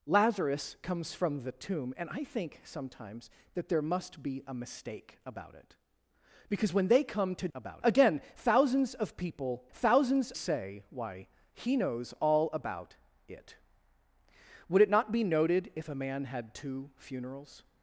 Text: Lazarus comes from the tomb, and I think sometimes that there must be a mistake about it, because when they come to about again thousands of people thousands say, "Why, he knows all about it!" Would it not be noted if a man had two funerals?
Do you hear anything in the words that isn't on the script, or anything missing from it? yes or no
no